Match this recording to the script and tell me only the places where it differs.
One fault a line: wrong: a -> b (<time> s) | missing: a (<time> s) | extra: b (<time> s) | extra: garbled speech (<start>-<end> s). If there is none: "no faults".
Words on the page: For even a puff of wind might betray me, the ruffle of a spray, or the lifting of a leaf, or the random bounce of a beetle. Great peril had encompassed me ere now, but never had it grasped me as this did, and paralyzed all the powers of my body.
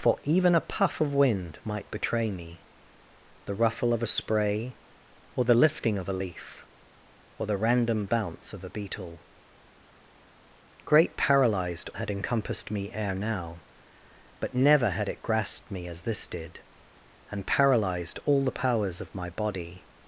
wrong: peril -> paralyzed (11.2 s)